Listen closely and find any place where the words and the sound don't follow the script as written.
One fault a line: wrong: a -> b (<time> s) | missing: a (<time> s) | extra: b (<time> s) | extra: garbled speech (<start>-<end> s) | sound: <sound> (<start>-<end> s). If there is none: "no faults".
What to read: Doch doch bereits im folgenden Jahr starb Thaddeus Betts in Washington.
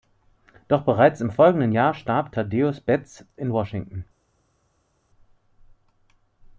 missing: doch (0.8 s)